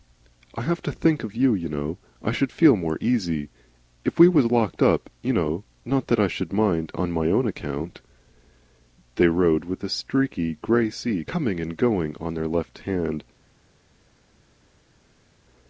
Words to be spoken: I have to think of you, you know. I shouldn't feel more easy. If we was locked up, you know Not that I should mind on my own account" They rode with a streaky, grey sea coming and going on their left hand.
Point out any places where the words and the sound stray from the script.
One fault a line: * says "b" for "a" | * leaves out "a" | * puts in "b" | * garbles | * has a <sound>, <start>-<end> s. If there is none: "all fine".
* says "should" for "shouldn't"